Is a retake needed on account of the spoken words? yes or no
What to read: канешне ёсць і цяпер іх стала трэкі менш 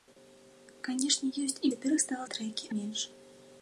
no